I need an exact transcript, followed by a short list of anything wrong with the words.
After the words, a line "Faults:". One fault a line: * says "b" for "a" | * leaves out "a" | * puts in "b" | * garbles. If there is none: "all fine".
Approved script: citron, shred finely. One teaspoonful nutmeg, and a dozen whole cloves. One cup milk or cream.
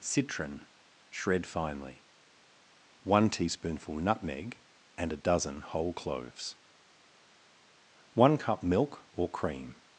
citron, shred finely. One teaspoonful nutmeg, and a dozen whole cloves. One cup milk or cream.
Faults:
all fine